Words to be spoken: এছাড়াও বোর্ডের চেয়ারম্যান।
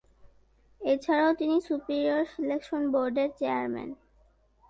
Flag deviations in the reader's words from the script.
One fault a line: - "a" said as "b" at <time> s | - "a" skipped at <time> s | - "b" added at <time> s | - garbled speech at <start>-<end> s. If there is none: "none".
- "তিনি সুপিরিয়র সিলেকশন" added at 1.3 s